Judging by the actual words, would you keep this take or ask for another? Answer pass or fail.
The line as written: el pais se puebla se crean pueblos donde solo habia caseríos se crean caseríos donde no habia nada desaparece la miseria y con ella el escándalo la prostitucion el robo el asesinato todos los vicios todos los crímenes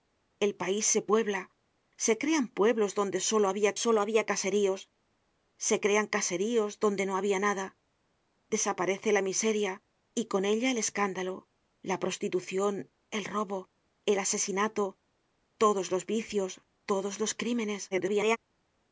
fail